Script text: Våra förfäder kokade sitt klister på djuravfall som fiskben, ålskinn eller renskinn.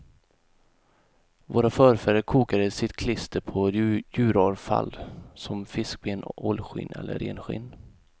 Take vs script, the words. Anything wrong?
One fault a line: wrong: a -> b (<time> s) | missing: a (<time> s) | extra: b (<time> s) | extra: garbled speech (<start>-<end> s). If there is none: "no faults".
no faults